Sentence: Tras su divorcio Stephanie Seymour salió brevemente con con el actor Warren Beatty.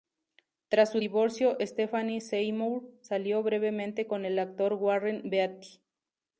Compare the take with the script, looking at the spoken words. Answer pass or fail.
fail